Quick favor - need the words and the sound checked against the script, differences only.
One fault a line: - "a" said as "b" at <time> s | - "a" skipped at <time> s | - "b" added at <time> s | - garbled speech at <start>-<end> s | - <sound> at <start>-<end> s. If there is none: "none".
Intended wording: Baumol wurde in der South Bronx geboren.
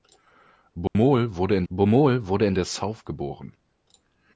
- dropout at 0.9-1.0 s
- "baumol wurde in" added at 1.7 s
- "Bronx" skipped at 3.0 s